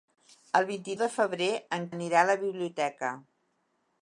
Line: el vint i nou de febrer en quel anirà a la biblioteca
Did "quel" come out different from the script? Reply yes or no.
yes